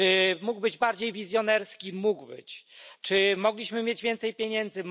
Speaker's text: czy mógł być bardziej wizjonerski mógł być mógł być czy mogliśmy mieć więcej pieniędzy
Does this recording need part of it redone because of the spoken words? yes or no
yes